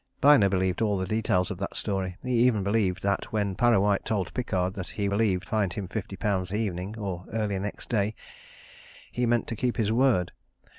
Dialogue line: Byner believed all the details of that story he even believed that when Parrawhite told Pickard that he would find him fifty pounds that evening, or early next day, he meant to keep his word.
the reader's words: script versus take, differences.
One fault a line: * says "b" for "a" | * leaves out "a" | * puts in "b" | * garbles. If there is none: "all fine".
* says "believed" for "would"
* leaves out "that"